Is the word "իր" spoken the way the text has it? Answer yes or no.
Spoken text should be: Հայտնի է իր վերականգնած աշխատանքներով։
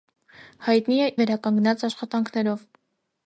no